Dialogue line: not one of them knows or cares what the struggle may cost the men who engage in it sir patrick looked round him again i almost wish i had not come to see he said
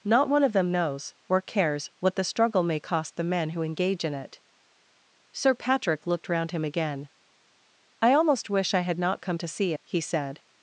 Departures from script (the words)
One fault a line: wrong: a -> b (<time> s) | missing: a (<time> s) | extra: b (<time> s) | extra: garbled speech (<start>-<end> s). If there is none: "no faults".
no faults